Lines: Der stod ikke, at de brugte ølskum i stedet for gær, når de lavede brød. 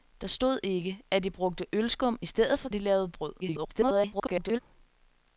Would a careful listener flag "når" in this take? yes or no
yes